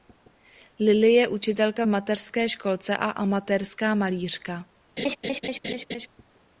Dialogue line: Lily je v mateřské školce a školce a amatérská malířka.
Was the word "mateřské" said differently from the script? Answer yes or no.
no